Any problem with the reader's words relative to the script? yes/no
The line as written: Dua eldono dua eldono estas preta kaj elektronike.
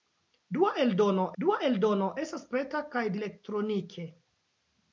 no